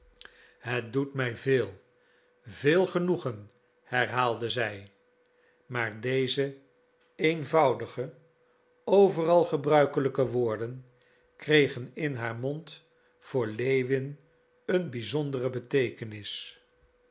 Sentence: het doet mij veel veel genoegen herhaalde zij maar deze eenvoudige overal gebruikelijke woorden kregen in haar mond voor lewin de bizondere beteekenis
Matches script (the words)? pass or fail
fail